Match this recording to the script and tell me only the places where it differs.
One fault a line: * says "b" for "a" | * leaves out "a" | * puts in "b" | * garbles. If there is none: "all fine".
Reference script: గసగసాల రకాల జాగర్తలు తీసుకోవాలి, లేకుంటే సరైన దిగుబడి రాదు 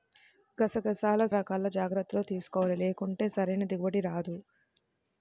all fine